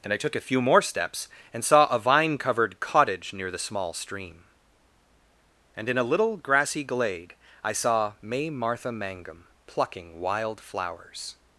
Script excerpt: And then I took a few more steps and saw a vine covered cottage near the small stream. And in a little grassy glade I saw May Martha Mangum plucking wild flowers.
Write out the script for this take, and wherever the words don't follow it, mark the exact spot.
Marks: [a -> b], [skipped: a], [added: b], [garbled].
And [skipped: then] I took a few more steps and saw a vine covered cottage near the small stream. And in a little grassy glade I saw May Martha Mangum plucking wild flowers.